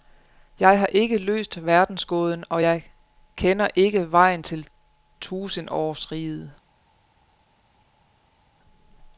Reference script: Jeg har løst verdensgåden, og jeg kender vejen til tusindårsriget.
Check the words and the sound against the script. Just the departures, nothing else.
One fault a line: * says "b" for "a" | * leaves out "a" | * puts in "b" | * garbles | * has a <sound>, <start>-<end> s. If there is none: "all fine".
* puts in "ikke"
* puts in "ikke"